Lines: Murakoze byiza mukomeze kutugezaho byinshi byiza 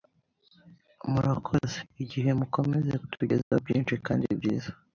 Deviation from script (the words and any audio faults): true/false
true